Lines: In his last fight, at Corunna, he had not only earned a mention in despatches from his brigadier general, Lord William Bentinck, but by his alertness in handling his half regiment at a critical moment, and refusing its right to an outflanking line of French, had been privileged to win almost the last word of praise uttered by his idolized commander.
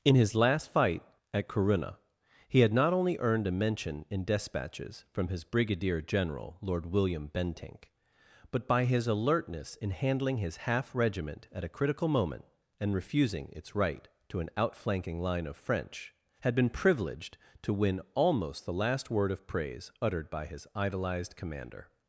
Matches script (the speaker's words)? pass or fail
pass